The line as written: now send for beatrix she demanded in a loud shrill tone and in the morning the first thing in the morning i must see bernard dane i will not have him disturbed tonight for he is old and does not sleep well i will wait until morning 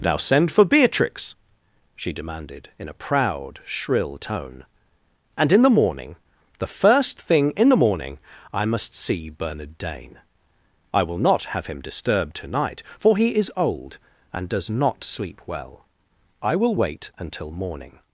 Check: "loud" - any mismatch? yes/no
yes